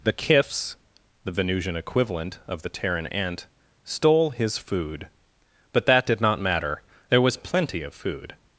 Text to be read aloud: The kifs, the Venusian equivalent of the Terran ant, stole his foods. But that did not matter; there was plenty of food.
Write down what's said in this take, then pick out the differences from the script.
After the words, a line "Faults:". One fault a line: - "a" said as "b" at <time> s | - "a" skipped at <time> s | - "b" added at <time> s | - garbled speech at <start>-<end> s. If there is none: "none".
The kifs, the Venusian equivalent of the Terran ant, stole his food. But that did not matter; there was plenty of food.
Faults:
- "foods" said as "food" at 4.6 s